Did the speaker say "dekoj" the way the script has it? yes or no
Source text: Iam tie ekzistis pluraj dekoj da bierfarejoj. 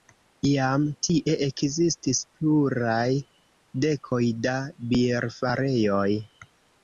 yes